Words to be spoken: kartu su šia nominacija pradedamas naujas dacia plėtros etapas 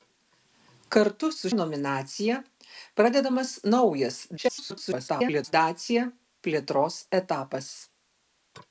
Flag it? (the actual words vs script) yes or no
yes